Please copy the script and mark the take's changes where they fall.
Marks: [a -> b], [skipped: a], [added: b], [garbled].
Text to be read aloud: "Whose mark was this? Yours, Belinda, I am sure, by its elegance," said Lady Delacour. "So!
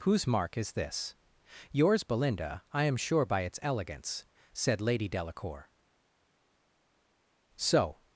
"Whose mark [was -> is] this? Yours, Belinda, I am sure, by its elegance," said Lady Delacour. "So!